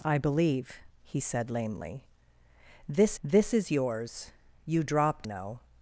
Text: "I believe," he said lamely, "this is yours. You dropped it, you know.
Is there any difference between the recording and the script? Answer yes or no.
yes